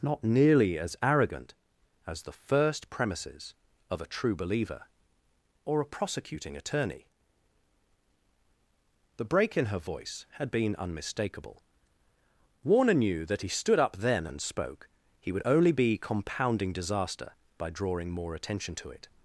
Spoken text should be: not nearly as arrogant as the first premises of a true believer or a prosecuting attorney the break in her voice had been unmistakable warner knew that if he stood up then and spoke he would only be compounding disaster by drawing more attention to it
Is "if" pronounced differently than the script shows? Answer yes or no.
yes